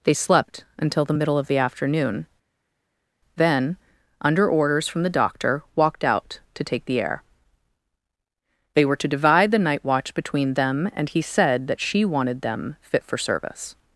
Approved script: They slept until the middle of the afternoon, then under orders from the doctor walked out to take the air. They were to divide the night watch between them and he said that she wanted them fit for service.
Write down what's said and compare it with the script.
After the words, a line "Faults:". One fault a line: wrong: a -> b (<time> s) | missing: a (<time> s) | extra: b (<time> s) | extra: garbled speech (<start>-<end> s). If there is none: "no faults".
They slept until the middle of the afternoon, then under orders from the doctor walked out to take the air. They were to divide the night watch between them and he said that she wanted them fit for service.
Faults:
no faults